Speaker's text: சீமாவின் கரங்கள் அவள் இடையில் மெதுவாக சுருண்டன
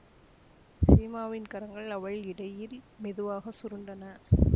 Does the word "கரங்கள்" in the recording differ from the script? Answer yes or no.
no